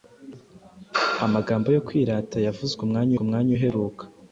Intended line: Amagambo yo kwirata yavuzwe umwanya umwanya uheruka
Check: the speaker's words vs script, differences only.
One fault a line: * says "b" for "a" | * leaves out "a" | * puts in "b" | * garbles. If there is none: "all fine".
all fine